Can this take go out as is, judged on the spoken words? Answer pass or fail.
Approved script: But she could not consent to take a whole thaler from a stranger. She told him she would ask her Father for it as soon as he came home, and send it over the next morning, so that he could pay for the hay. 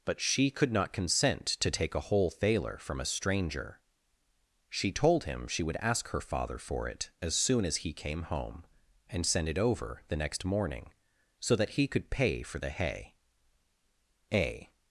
fail